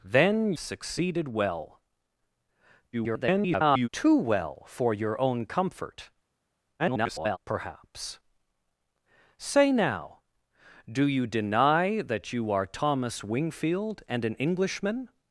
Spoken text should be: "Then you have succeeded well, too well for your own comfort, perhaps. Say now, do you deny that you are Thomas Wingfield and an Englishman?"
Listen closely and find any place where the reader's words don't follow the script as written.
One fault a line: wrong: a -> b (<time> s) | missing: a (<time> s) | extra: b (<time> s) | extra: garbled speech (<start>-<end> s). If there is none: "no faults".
missing: you have (0.5 s)
extra: garbled speech (2.9-3.9 s)
extra: garbled speech (6.8-7.4 s)